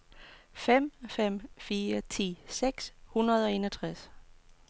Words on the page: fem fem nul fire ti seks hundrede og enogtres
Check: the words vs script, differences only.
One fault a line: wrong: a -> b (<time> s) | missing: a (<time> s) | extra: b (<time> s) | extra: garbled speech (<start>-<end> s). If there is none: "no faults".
missing: nul (1.5 s)